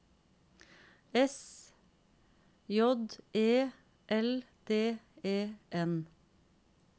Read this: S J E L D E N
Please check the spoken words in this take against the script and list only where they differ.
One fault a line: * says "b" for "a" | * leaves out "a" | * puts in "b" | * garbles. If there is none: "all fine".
all fine